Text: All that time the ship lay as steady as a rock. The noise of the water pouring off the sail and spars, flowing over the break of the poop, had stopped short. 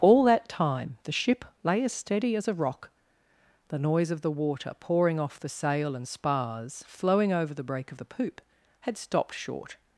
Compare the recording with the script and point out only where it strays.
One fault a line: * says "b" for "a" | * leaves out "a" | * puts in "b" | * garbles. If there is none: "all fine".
all fine